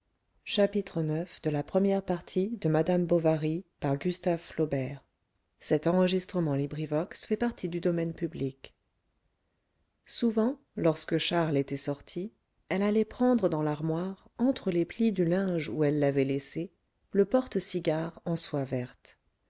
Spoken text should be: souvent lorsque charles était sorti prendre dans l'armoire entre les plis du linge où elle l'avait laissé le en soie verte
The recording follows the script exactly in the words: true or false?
false